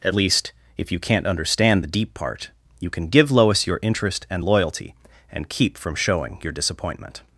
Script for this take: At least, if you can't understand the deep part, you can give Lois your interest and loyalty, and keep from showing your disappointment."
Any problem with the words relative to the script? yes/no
no